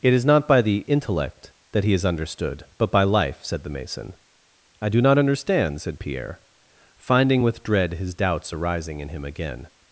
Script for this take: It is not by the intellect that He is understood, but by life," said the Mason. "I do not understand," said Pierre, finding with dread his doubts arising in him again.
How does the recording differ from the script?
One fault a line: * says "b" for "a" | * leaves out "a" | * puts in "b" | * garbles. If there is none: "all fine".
all fine